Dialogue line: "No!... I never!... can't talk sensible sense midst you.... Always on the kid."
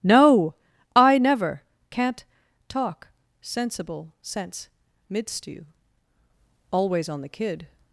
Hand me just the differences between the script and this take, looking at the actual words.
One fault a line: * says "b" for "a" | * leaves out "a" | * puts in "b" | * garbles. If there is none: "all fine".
all fine